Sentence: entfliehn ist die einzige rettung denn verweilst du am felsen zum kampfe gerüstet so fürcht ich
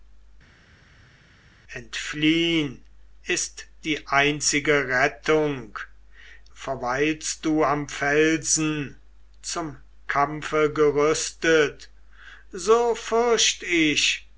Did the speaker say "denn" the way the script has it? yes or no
no